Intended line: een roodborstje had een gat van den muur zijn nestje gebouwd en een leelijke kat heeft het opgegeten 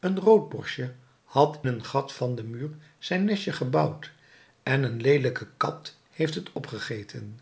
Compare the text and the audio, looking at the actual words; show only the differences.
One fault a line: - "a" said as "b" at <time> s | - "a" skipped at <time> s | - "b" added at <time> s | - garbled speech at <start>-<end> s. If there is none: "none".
none